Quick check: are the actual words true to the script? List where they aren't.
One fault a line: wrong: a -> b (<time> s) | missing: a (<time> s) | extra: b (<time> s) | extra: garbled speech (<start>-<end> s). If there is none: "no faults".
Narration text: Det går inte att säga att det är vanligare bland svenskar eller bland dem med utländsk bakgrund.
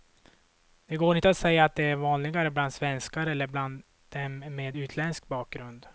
no faults